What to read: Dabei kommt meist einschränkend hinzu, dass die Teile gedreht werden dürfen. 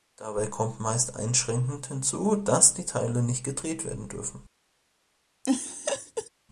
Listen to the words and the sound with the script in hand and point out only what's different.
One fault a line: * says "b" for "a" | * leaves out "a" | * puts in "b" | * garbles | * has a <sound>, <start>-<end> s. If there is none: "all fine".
* puts in "nicht"
* has a laugh, 5.4-6.3 s